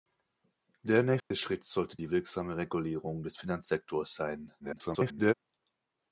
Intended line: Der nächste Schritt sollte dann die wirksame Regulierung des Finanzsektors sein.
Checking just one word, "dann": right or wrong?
wrong